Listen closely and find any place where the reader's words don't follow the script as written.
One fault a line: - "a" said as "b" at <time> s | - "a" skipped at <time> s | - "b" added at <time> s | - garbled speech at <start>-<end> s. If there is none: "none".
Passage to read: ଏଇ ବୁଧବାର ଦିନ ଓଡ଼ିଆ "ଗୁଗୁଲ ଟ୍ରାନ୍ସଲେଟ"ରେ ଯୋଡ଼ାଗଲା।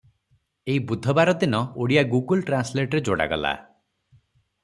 none